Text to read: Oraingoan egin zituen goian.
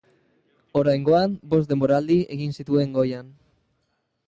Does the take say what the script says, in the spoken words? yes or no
no